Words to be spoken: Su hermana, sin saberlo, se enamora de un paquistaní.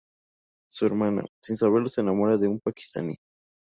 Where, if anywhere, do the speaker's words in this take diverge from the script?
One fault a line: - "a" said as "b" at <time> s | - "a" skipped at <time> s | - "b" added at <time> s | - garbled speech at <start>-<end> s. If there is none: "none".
none